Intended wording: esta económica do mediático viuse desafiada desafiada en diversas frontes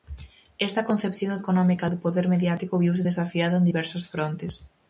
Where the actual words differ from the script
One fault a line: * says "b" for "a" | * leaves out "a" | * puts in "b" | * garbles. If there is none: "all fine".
* puts in "concepción"
* puts in "poder"
* leaves out "desafiada"